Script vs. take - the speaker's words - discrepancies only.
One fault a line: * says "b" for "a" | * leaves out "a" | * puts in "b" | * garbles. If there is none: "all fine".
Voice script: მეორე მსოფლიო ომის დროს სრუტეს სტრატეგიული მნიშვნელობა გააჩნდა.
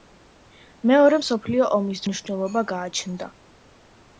* leaves out "დროს სრუტეს სტრატეგიული"